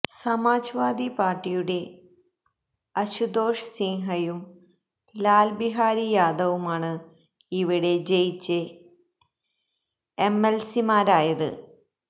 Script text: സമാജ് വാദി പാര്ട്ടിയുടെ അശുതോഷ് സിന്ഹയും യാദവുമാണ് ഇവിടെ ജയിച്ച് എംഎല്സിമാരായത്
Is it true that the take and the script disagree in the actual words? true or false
true